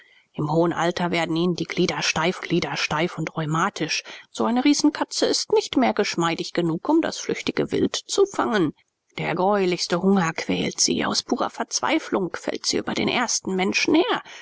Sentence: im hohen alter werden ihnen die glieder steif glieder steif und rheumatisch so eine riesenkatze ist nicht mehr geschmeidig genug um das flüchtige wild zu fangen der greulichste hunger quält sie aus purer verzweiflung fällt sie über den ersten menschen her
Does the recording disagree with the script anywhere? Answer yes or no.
no